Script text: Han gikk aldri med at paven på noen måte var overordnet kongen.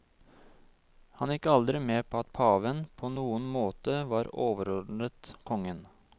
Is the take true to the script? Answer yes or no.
no